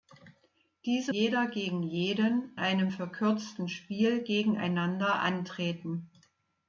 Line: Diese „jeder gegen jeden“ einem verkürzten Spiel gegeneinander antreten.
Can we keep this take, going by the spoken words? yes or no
yes